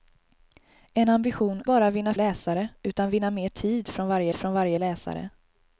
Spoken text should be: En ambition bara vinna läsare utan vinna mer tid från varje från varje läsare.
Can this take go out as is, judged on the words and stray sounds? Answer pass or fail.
pass